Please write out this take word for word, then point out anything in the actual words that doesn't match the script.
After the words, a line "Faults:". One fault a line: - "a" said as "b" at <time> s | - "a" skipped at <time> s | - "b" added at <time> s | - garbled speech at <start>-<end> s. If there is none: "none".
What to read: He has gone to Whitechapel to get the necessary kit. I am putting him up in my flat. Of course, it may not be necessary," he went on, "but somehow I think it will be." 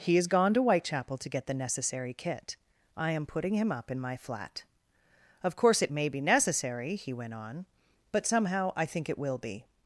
He has gone to Whitechapel to get the necessary kit. I am putting him up in my flat. Of course, it may be necessary," he went on, "but somehow I think it will be."
Faults:
- "not" skipped at 6.1 s